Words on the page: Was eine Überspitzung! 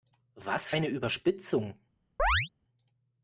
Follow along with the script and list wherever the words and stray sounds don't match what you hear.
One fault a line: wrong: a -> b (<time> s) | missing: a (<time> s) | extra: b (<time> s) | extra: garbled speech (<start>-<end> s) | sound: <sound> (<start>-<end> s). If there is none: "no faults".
sound: chirp (2.2-2.5 s)